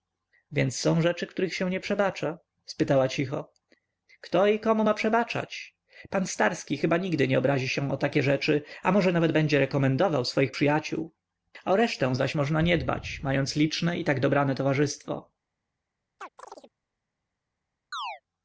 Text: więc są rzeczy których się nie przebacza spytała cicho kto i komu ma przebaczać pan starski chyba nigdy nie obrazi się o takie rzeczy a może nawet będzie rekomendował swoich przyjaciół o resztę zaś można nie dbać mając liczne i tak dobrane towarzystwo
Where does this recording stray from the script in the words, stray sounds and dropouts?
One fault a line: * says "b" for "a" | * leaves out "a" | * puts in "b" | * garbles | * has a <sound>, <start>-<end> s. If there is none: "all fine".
* has a chirp, 16.2-16.7 s
* has a chirp, 17.9-18.2 s